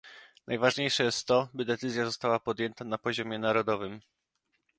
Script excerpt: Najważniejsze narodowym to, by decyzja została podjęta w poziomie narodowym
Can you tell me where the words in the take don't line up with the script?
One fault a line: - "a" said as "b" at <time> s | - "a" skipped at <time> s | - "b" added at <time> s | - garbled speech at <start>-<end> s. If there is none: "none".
- "narodowym" said as "jest" at 1.0 s
- "w" said as "na" at 2.9 s